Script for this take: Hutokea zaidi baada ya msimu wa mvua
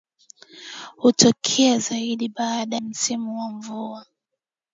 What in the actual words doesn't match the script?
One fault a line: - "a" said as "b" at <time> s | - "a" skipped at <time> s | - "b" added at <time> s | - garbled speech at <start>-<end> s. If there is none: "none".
- "ya" skipped at 2.8 s